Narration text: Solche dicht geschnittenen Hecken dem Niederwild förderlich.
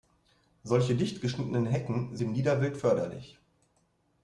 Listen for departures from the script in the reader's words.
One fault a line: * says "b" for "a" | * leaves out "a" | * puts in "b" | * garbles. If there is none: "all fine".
all fine